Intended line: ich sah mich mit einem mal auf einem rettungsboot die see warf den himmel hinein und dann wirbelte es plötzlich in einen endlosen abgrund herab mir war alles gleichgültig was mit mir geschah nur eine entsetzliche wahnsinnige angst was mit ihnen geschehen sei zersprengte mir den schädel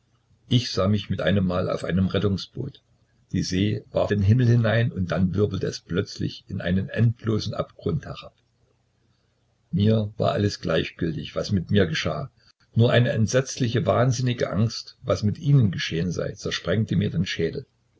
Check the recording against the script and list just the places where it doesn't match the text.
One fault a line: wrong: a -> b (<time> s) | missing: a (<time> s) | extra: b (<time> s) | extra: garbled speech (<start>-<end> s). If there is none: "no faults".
no faults